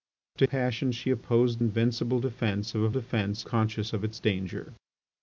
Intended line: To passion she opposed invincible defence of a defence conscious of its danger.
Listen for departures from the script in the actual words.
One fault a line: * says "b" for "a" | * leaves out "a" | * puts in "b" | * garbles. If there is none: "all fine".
all fine